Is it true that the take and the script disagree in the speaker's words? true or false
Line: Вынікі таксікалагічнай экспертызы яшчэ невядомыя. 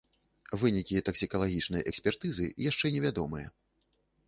false